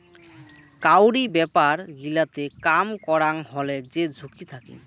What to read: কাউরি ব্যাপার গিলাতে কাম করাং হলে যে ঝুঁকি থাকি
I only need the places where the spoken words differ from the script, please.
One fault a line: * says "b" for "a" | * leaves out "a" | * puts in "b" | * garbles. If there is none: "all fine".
all fine